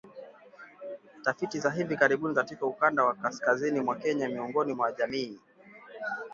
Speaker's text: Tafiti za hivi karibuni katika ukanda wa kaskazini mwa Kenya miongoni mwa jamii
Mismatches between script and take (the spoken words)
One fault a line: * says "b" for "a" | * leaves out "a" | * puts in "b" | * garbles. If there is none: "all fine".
all fine